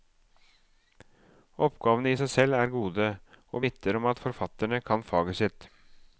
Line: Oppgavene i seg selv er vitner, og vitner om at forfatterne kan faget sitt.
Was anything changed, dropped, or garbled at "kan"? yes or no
no